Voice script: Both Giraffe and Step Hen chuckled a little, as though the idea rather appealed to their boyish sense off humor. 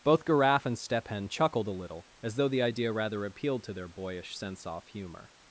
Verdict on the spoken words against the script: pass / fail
pass